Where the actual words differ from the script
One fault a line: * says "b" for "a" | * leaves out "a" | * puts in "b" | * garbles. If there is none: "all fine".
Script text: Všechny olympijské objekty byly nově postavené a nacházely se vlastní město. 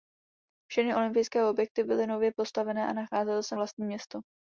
all fine